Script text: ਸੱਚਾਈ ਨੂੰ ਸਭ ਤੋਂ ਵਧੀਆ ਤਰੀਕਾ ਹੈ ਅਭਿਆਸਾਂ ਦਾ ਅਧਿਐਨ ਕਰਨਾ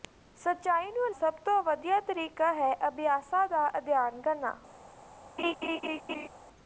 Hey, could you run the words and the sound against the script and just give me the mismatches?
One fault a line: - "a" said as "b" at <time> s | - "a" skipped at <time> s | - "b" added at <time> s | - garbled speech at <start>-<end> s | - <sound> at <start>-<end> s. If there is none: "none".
- laugh at 5.4-6.3 s